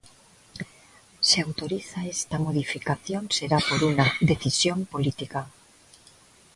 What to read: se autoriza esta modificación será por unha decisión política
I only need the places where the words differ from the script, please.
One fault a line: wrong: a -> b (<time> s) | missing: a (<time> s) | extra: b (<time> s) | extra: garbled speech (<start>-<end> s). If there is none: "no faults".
no faults